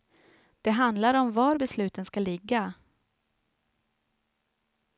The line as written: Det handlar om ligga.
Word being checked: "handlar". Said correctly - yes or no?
yes